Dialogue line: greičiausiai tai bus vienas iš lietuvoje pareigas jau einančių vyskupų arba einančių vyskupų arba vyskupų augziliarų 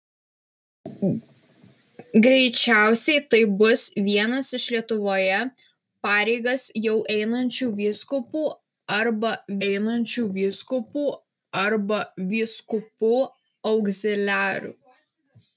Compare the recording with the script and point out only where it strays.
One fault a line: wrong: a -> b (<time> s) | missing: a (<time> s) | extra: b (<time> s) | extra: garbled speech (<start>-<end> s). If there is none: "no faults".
no faults